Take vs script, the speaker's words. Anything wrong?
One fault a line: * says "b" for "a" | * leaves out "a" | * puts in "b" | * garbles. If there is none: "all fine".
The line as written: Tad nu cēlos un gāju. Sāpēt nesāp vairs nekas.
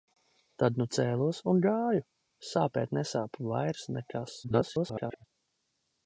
* garbles